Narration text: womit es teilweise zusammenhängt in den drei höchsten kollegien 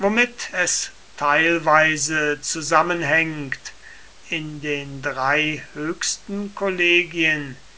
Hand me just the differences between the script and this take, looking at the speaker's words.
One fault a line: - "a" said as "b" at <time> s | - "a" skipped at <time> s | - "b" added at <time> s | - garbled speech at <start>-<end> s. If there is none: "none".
none